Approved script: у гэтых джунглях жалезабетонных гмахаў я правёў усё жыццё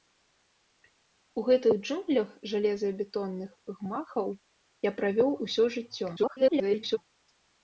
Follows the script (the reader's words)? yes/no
no